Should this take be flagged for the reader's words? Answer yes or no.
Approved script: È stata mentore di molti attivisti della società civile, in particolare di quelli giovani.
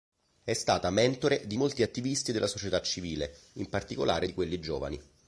no